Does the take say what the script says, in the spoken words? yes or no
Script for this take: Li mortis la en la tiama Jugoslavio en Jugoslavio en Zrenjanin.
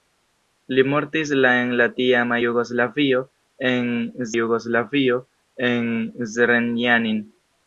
yes